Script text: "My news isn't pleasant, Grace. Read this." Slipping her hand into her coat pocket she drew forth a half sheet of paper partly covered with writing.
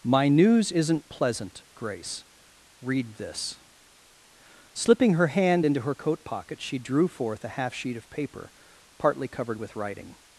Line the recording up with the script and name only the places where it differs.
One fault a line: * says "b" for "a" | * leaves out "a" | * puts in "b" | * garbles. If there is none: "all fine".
all fine